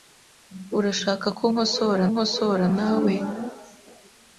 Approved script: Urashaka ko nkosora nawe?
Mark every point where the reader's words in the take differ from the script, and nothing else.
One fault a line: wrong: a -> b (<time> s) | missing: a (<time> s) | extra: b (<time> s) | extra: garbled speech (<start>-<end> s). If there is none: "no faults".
extra: nkosora (2.1 s)